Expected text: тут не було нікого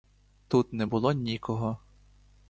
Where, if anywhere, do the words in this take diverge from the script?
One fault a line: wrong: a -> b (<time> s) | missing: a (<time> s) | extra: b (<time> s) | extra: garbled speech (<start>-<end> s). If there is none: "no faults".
no faults